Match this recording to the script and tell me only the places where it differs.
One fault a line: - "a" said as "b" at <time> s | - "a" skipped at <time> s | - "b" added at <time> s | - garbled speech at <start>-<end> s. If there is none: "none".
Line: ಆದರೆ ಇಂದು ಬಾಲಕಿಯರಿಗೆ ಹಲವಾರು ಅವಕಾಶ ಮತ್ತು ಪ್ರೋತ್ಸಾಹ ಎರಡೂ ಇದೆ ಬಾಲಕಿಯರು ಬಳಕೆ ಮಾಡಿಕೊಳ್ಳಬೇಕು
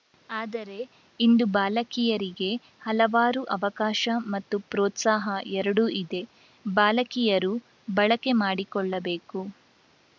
none